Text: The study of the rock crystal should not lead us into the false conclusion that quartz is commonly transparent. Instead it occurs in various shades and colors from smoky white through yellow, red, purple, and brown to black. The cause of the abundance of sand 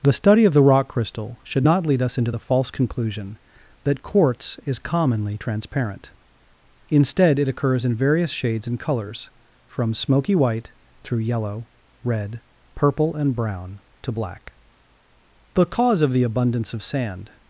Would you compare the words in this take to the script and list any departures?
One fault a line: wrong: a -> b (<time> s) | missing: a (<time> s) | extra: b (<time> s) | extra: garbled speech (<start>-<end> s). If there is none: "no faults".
no faults